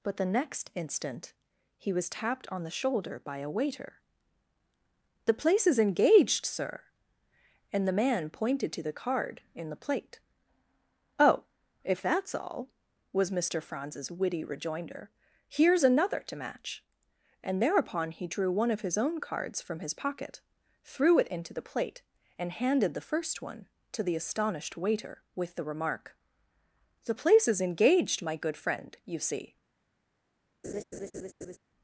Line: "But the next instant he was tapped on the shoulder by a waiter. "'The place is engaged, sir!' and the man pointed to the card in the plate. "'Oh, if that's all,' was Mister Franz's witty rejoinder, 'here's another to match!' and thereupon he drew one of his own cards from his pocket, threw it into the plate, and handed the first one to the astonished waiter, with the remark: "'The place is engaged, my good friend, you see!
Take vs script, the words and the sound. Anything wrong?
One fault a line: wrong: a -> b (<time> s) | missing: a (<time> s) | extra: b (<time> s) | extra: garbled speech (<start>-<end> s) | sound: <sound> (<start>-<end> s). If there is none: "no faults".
sound: laugh (30.6-31.6 s)